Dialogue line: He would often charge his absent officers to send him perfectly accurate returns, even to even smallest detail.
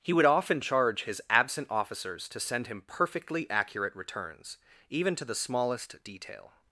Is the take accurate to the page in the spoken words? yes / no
no